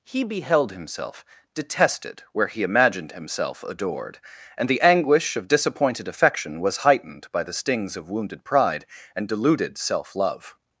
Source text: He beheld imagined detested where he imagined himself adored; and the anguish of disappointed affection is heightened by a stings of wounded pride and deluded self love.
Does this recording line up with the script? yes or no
no